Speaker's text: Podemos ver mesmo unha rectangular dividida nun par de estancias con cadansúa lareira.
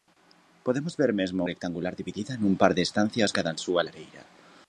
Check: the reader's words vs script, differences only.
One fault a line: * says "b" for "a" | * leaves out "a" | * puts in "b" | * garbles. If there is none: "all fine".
* leaves out "unha"
* leaves out "con"